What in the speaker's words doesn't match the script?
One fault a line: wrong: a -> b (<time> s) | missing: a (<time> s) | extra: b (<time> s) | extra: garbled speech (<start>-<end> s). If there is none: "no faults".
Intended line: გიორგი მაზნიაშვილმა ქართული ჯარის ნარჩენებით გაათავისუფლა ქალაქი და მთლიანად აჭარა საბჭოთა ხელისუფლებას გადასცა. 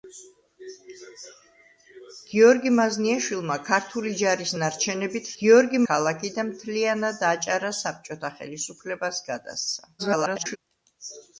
wrong: გაათავისუფლა -> გიორგი (5.4 s)
extra: garbled speech (10.0-10.6 s)